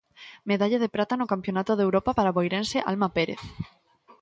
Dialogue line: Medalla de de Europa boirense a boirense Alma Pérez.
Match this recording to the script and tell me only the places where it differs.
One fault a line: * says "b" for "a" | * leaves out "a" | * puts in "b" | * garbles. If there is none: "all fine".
* puts in "prata no Campionato"
* says "para" for "boirense"